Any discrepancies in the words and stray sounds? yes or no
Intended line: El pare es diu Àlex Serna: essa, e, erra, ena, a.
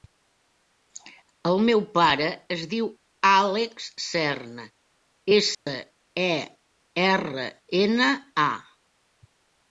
yes